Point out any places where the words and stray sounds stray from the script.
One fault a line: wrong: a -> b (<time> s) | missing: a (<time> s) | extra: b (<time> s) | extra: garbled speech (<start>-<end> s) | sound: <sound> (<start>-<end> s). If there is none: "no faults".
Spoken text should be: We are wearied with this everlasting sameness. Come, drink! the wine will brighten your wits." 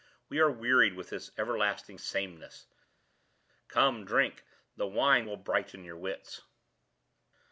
no faults